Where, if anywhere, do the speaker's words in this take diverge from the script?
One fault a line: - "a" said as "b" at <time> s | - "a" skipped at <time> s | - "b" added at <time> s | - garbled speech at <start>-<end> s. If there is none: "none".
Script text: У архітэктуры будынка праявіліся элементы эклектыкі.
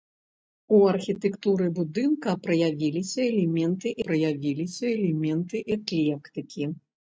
- "праявіліся элементы" added at 4.1 s